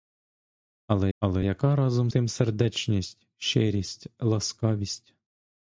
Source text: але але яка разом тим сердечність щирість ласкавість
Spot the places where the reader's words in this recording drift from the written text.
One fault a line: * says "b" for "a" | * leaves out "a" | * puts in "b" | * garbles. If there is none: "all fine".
all fine